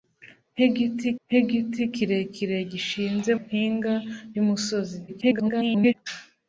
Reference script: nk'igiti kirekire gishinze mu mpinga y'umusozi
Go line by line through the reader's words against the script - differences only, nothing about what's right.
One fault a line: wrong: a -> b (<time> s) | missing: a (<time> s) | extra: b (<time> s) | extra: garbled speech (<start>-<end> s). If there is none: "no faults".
extra: nk'igiti (1.3 s)
missing: mu (3.3 s)
extra: garbled speech (5.1-5.9 s)